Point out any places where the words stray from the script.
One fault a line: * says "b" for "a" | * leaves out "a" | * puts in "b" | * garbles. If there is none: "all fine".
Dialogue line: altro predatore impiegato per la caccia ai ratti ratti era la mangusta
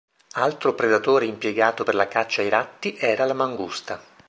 * leaves out "ratti"